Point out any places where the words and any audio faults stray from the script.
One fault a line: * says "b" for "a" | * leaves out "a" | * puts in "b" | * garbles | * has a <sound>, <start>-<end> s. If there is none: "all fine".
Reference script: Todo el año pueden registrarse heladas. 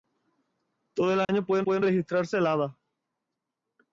* has a dropout, 1.2-1.3 s
* puts in "pueden"